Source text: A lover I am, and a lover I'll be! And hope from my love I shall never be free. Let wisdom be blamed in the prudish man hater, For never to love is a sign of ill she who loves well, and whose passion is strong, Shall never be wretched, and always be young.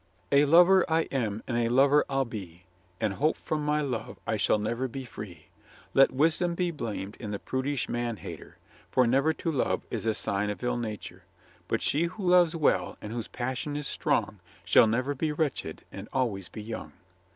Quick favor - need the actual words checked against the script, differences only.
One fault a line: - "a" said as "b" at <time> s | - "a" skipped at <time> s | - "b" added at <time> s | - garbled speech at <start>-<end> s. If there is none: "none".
- "nature But" added at 10.8 s